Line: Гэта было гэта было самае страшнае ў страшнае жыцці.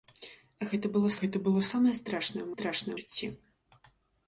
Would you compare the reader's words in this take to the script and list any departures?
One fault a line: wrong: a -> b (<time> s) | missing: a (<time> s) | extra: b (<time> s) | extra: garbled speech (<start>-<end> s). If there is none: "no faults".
no faults